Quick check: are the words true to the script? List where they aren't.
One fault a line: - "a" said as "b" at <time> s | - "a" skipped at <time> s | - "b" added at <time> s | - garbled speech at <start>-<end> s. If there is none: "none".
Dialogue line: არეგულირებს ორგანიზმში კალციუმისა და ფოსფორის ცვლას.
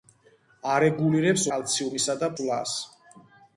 - "ორგანიზმში" skipped at 1.4 s
- "ფოსფორის" skipped at 2.3 s